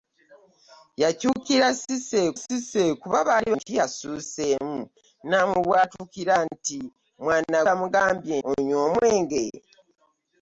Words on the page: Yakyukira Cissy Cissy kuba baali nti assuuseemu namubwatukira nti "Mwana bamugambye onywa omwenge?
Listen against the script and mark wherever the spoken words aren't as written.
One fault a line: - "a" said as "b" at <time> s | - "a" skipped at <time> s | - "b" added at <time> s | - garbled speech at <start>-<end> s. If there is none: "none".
none